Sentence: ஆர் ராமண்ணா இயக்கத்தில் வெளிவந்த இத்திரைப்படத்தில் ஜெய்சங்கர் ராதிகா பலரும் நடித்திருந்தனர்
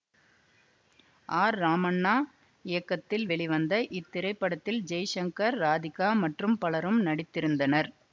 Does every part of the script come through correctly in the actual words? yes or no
no